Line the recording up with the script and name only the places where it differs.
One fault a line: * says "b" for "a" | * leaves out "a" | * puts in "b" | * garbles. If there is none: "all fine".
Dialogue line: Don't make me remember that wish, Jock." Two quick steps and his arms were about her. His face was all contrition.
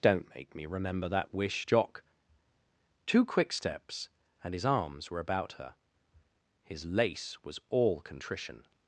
* says "lace" for "face"